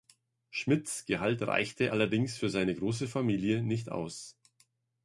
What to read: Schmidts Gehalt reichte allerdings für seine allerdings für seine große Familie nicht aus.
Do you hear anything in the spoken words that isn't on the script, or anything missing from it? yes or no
yes